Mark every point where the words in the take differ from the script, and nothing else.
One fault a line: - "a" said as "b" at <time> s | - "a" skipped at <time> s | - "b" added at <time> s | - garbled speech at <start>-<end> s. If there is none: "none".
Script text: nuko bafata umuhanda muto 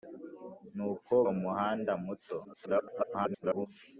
- "bafata" skipped at 1.1 s
- garbled speech at 2.4-3.7 s